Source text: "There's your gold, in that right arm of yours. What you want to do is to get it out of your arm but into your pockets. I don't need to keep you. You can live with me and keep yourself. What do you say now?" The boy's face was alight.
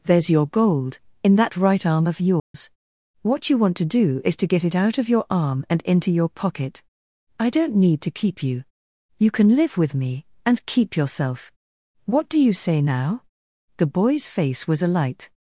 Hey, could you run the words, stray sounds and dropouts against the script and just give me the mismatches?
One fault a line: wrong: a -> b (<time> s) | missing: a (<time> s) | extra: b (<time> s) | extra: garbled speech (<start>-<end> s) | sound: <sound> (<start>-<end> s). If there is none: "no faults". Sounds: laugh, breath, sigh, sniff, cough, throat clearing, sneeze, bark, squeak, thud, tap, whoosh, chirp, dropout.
sound: dropout (2.4-2.5 s)
wrong: but -> and (5.7 s)
wrong: pockets -> pocket (6.3 s)